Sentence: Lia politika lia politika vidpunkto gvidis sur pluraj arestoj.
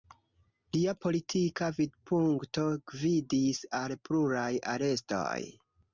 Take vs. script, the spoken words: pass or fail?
fail